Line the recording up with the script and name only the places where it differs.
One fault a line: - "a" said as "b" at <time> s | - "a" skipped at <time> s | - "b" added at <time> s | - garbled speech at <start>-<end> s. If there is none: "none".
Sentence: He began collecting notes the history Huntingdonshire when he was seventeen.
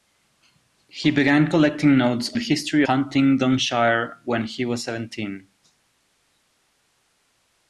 none